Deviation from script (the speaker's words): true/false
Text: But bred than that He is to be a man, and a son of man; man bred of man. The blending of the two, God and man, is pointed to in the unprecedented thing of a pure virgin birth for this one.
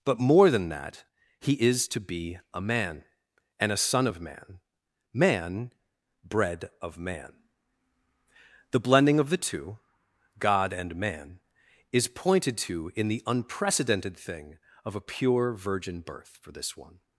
true